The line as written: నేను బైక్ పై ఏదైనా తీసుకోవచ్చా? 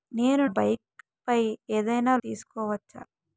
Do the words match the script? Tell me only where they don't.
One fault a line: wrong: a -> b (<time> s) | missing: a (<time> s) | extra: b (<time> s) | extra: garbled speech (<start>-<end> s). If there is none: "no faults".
no faults